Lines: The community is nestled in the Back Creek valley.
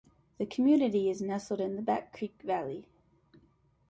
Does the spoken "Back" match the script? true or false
true